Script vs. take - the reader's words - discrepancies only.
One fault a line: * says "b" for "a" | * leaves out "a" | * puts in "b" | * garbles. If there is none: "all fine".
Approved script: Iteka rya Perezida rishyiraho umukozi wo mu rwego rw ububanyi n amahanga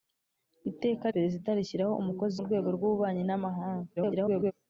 * leaves out "rya"
* leaves out "wo"
* garbles